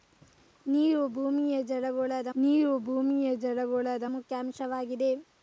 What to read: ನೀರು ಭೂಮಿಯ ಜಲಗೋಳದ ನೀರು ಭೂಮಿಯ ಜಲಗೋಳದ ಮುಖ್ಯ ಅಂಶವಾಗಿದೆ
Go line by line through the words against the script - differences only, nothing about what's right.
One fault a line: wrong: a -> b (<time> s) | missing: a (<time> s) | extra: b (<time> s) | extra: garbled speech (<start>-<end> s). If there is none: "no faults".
no faults